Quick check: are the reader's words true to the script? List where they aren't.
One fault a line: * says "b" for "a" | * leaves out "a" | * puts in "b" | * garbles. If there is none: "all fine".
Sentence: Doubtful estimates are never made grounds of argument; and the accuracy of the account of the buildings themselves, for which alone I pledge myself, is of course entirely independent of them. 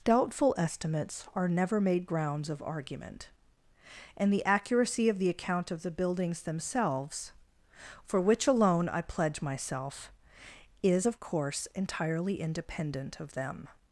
all fine